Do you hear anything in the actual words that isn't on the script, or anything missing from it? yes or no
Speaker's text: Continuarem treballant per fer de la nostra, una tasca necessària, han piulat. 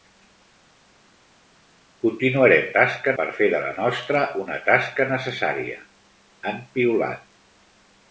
yes